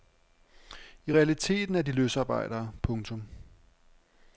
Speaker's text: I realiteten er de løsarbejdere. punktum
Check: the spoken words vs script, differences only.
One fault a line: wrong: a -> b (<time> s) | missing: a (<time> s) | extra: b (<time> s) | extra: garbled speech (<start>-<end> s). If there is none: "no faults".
no faults